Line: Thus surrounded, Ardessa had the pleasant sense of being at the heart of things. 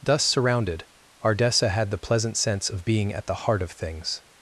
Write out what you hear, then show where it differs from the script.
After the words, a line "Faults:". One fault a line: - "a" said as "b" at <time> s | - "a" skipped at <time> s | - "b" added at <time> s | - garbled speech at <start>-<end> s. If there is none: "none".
Thus surrounded, Ardessa had the pleasant sense of being at the heart of things.
Faults:
none